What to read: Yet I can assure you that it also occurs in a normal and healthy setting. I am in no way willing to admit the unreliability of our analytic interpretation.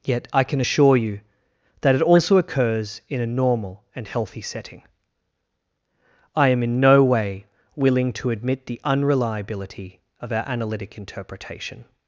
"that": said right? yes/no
yes